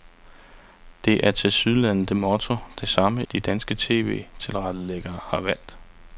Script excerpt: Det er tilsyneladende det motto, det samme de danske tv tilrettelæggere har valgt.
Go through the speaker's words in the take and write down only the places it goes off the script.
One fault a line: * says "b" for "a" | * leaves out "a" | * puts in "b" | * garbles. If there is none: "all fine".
all fine